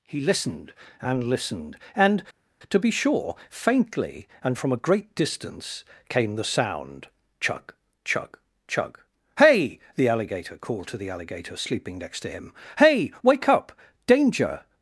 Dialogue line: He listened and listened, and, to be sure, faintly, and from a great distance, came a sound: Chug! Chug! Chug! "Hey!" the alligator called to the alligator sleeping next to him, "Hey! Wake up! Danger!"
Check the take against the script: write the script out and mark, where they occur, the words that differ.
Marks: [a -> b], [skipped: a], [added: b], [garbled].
He listened and listened, and, to be sure, faintly, and from a great distance, came [a -> the] sound: Chug! Chug! Chug! "Hey!" the alligator called to the alligator sleeping next to him, "Hey! Wake up! Danger!"